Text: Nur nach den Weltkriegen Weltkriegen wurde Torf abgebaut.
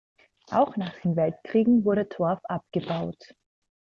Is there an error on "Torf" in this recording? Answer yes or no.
no